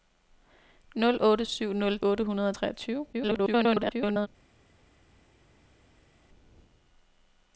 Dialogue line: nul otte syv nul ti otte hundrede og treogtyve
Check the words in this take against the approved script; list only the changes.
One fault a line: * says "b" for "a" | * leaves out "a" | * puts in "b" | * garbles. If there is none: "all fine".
* leaves out "ti"
* garbles